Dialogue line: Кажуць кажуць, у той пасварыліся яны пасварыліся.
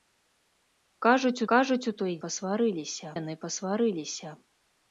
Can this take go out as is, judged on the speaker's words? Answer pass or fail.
pass